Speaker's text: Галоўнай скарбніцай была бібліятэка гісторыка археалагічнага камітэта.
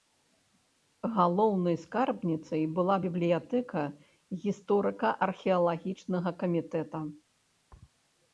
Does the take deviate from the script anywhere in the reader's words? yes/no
no